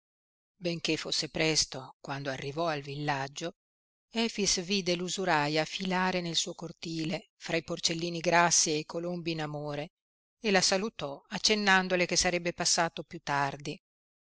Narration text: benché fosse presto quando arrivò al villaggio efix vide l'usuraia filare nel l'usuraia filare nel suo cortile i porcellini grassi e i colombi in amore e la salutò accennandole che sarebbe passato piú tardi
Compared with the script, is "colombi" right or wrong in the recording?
right